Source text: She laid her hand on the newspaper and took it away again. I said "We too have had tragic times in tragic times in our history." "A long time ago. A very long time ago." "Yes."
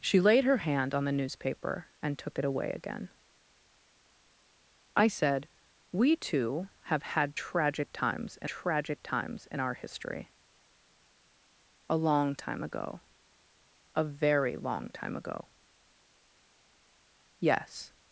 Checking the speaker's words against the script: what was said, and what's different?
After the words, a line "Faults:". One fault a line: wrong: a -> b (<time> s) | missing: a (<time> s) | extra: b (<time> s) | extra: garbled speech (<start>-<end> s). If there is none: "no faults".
She laid her hand on the newspaper and took it away again. I said "We too have had tragic times in tragic times in our history." "A long time ago. A very long time ago." "Yes."
Faults:
no faults